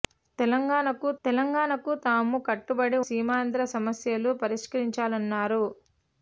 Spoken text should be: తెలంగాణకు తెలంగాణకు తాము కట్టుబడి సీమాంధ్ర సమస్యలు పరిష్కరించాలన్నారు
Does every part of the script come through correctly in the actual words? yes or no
yes